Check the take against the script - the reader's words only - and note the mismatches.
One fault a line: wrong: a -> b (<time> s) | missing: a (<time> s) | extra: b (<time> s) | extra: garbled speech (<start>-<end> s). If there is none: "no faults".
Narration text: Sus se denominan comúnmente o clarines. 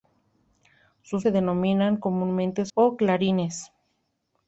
no faults